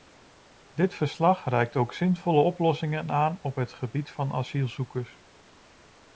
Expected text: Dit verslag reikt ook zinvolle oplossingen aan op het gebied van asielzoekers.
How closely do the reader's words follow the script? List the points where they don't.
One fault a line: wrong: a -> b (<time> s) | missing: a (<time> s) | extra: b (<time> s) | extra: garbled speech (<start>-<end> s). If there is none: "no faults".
no faults